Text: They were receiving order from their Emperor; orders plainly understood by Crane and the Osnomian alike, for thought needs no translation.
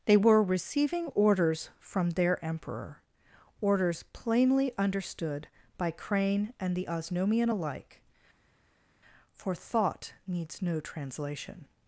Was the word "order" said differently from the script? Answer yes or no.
yes